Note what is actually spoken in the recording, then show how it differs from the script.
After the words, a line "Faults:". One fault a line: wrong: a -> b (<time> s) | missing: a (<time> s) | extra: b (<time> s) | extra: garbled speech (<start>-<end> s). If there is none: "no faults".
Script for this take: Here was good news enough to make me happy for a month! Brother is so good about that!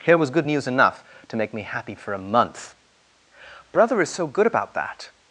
Here was good news enough to make me happy for a month! Brother is so good about that!
Faults:
no faults